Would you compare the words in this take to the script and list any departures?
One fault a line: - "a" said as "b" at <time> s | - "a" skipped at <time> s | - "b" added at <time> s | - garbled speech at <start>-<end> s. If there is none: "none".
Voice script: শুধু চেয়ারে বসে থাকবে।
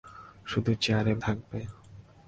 - "বসে" skipped at 1.1 s